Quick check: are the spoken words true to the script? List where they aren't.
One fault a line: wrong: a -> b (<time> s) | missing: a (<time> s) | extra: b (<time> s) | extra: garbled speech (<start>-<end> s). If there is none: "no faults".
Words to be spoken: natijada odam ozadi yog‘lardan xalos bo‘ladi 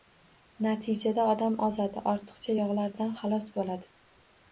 extra: ortiqcha (2.1 s)